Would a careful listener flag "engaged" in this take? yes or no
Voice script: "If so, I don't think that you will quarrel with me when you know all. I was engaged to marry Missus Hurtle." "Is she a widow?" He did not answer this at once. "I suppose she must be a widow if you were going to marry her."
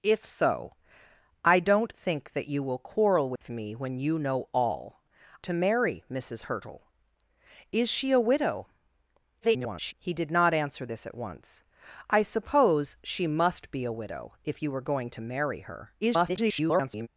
yes